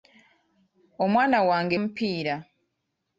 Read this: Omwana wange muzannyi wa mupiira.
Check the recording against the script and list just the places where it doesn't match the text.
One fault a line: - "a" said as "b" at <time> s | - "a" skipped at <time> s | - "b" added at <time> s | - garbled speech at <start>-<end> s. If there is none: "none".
- "muzannyi wa" skipped at 1.8 s